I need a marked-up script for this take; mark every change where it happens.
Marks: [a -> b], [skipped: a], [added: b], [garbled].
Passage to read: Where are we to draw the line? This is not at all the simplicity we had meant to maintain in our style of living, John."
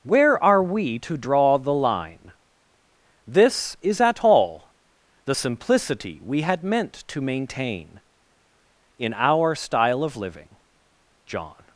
Where are we to draw the line? This is [skipped: not] at all the simplicity we had meant to maintain in our style of living, John."